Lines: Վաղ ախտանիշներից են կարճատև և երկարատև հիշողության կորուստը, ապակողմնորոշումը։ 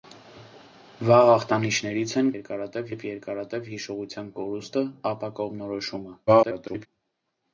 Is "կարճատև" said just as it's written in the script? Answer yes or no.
no